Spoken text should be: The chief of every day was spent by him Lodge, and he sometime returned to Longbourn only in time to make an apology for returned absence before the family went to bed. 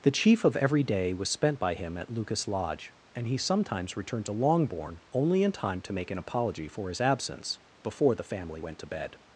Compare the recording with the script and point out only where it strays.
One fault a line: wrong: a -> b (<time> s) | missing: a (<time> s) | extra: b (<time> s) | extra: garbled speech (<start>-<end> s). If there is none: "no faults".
extra: at Lucas (1.9 s)
wrong: sometime -> sometimes (3.4 s)
wrong: returned -> his (6.9 s)